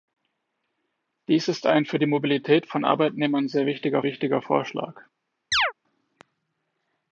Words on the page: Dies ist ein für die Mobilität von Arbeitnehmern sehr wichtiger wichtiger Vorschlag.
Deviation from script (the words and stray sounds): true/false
true